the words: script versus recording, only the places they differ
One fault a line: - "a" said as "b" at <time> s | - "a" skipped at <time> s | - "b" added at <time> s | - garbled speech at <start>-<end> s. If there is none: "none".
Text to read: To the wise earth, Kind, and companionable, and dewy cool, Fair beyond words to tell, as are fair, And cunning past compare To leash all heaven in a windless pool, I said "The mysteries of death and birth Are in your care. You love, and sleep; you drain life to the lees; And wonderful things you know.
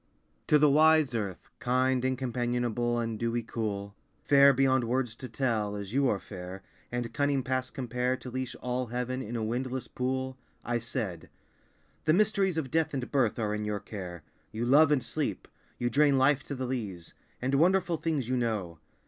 - "you" added at 5.9 s